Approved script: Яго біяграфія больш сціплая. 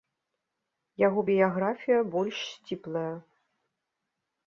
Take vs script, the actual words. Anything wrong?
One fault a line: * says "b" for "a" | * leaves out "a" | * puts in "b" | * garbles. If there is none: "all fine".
all fine